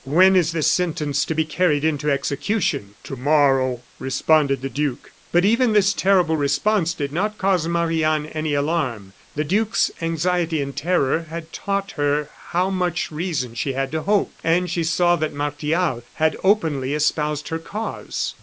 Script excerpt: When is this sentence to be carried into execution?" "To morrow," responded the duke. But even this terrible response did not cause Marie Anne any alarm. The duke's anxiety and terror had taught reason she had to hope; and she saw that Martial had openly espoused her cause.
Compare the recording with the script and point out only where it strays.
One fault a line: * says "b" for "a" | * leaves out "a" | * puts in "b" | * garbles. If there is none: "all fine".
* puts in "her how much"